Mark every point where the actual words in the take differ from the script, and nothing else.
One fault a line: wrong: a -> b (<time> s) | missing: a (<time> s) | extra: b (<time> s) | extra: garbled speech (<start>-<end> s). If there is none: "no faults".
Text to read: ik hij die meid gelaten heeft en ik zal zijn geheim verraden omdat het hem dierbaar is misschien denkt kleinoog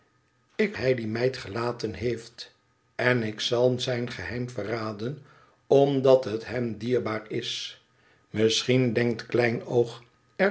no faults